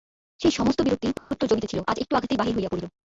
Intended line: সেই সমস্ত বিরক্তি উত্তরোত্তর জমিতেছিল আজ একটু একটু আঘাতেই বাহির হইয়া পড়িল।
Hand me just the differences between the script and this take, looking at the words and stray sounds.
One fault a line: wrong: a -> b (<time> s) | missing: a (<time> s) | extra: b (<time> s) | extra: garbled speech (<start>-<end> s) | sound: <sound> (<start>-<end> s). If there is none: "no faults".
sound: dropout (1.2-1.3 s)
missing: একটু (2.1 s)